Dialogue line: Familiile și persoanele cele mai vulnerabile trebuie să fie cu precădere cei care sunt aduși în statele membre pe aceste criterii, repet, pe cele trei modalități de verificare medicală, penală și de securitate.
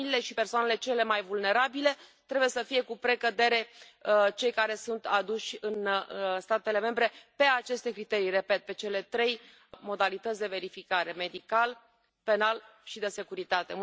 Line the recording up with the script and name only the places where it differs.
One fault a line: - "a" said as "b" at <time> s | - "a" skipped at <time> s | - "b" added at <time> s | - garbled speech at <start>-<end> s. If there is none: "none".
none